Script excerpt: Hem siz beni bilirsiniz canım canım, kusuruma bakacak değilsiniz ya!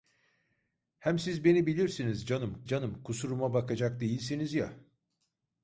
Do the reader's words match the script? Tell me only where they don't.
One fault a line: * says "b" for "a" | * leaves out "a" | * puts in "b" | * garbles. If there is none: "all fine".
all fine